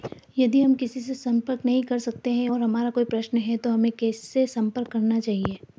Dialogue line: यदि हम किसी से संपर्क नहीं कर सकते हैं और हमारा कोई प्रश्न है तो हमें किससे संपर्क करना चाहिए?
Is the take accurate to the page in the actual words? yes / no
yes